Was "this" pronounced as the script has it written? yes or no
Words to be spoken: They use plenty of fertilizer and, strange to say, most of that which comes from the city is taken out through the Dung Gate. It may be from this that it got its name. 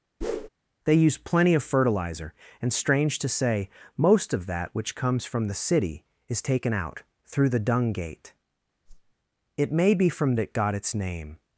no